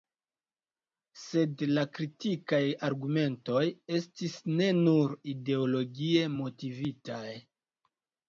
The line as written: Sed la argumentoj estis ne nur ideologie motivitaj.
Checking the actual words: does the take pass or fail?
fail